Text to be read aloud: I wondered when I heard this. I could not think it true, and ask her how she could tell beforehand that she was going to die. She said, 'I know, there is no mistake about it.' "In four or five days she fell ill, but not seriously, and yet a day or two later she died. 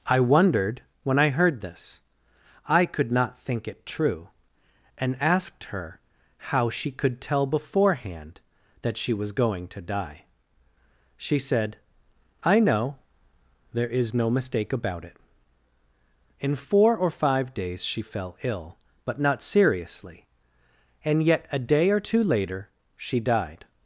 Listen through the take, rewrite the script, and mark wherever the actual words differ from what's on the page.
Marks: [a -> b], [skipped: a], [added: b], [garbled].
I wondered when I heard this. I could not think it true, and [ask -> asked] her how she could tell beforehand that she was going to die. She said, 'I know, there is no mistake about it.' "In four or five days she fell ill, but not seriously, and yet a day or two later she died.